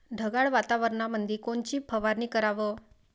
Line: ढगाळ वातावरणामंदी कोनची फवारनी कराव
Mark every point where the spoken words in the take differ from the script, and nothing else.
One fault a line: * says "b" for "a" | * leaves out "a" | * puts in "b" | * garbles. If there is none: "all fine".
all fine